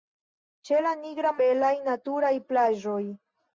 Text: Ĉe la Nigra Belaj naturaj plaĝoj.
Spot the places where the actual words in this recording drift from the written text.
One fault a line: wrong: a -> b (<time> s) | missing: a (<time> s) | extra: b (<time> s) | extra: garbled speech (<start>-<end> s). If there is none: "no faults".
no faults